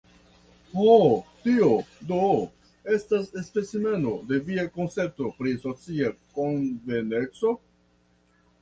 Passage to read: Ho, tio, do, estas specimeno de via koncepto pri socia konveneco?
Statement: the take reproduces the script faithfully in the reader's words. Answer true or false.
true